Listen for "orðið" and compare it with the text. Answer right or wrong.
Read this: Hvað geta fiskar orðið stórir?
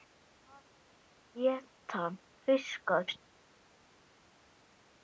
wrong